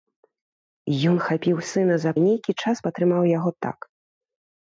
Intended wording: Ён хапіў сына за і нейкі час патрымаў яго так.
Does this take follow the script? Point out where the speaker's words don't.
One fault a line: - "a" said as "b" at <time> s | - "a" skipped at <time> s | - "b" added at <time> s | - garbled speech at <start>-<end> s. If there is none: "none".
none